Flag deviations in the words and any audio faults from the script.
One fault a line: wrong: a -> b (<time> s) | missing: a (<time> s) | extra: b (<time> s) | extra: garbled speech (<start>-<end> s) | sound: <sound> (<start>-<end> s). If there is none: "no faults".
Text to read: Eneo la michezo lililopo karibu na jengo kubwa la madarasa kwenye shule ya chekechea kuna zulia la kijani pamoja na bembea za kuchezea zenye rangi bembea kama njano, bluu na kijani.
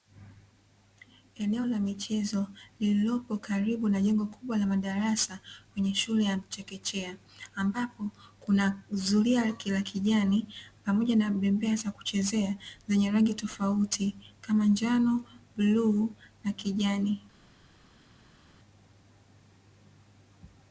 extra: ambapo (7.6 s)
wrong: bembea -> tofauti (13.3 s)